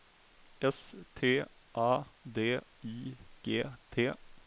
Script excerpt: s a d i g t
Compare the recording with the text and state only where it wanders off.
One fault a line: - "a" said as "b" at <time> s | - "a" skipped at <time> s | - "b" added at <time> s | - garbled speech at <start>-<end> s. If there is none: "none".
- "t" added at 1.1 s